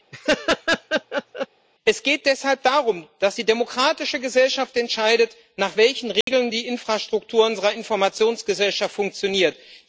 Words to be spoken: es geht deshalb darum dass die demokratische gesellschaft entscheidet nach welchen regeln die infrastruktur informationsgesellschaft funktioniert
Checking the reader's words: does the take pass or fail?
fail